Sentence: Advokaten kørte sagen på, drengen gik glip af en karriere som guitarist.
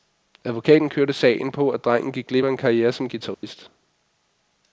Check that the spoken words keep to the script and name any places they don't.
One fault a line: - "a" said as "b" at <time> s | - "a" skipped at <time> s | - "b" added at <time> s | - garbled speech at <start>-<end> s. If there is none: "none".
- "at" added at 1.7 s